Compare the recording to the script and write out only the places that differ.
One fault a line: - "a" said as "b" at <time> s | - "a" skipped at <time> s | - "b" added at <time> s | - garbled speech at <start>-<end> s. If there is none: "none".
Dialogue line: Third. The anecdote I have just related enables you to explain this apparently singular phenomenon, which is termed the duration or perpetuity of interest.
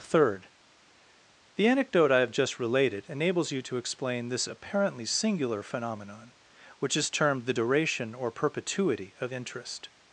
none